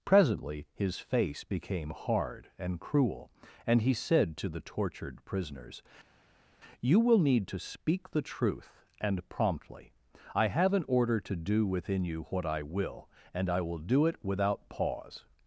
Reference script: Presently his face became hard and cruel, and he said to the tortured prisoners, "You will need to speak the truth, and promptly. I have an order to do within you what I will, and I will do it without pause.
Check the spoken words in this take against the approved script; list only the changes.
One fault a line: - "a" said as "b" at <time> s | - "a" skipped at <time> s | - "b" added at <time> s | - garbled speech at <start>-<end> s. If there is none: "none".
none